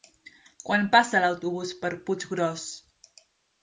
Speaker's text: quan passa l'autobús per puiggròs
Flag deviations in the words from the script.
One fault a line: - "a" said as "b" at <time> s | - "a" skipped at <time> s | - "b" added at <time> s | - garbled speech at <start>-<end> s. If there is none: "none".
none